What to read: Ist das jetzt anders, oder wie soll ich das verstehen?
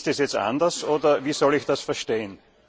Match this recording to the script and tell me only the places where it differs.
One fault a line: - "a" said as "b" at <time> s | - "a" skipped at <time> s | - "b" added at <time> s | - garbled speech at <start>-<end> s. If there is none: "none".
none